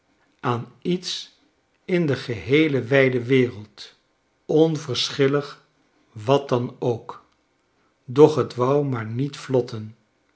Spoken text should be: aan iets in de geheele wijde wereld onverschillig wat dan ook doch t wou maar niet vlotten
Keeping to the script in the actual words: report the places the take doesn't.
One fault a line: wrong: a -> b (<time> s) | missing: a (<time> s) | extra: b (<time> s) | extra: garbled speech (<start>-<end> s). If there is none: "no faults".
no faults